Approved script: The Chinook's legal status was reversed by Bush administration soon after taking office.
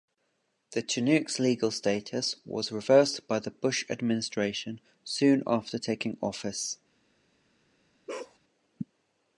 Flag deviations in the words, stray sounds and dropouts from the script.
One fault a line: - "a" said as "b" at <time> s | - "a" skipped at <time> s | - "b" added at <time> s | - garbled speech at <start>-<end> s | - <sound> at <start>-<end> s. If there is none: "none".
- "the" added at 3.4 s
- bark at 8.1-8.4 s